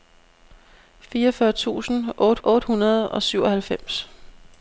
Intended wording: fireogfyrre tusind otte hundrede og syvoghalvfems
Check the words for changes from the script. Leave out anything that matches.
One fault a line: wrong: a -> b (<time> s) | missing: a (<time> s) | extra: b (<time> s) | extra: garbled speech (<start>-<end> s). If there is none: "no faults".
extra: otte (2.4 s)